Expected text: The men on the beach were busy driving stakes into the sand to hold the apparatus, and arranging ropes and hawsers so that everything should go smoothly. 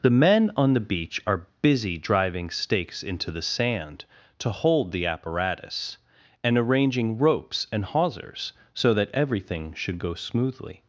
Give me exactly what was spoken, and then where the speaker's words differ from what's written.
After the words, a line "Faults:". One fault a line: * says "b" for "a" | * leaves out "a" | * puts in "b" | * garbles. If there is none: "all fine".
The men on the beach are busy driving stakes into the sand to hold the apparatus, and arranging ropes and hawsers so that everything should go smoothly.
Faults:
* says "are" for "were"